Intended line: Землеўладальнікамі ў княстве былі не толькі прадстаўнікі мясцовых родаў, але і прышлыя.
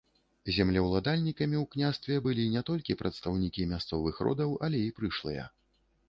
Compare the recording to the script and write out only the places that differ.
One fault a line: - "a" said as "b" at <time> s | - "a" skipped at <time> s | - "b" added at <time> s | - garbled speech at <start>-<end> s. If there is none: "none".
none